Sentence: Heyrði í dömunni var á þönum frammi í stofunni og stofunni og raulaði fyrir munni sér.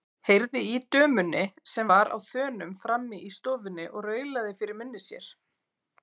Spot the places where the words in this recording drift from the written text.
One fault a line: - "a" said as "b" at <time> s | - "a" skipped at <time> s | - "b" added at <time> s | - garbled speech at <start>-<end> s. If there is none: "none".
- "sem" added at 1.7 s
- "stofunni og" skipped at 4.1 s